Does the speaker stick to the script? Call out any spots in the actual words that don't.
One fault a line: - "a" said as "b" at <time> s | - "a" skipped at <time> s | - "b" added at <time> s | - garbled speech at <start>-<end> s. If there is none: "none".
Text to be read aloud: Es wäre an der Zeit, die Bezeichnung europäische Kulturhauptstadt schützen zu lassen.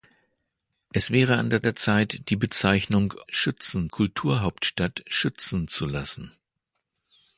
- "der" added at 1.6 s
- "europäische" said as "schützen" at 3.3 s